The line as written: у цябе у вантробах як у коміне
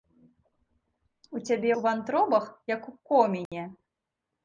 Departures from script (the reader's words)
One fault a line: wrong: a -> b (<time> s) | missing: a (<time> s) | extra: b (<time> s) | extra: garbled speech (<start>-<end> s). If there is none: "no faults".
no faults